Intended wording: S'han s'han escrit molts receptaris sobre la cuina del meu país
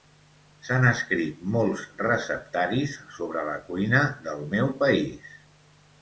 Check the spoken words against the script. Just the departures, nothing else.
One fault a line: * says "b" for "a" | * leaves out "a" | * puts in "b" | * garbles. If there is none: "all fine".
* leaves out "s'han"